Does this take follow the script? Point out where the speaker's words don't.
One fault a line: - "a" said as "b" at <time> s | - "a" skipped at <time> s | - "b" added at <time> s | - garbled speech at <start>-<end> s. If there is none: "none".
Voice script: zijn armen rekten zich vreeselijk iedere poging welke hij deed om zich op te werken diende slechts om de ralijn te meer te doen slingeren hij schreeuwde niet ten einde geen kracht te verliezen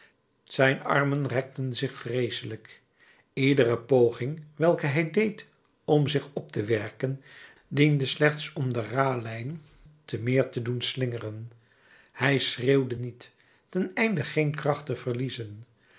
none